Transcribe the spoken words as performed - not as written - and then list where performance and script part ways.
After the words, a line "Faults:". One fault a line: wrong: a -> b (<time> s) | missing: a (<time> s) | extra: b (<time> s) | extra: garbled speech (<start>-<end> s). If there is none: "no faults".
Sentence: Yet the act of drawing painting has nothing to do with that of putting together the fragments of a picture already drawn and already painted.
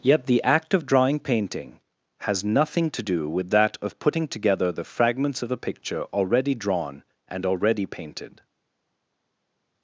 Yet the act of drawing painting has nothing to do with that of putting together the fragments of a picture already drawn and already painted.
Faults:
no faults